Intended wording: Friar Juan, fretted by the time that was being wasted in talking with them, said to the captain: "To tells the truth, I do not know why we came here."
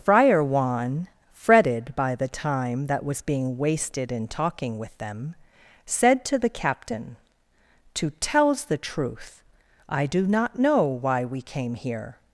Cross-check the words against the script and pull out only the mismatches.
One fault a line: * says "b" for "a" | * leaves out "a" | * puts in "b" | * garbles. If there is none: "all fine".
all fine